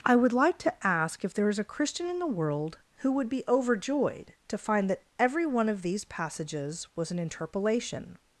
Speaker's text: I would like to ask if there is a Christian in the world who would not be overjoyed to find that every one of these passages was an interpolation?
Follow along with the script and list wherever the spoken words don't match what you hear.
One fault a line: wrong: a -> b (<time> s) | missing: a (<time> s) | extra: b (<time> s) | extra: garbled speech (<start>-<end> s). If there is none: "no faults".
missing: not (3.3 s)